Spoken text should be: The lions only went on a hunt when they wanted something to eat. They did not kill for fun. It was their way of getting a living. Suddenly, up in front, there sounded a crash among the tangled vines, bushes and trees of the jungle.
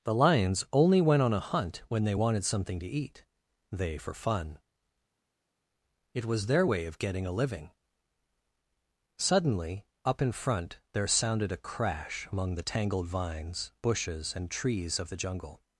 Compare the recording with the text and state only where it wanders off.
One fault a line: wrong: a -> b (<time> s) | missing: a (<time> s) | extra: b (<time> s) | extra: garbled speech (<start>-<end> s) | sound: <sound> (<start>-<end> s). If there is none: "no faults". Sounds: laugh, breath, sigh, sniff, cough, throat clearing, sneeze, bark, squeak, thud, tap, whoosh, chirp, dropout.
missing: did not kill (4.0 s)